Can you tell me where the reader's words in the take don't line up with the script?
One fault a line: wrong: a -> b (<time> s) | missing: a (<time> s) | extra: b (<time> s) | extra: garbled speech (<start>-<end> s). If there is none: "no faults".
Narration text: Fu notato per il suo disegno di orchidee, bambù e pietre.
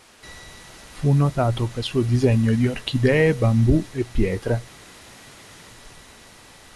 missing: il (1.9 s)